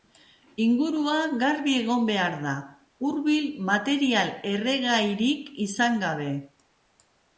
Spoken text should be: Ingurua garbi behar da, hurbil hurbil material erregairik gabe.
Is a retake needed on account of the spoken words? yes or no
yes